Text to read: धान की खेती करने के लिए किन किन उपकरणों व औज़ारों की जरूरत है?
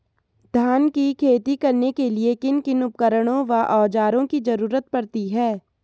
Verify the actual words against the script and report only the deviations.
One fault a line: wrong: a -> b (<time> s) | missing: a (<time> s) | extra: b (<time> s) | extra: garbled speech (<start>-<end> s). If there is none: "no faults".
extra: पड़ती (4.9 s)